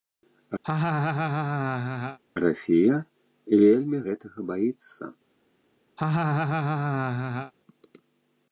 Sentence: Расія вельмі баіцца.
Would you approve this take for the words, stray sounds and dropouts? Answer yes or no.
no